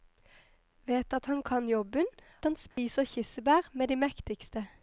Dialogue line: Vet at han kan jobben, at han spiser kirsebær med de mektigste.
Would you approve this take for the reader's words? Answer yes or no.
no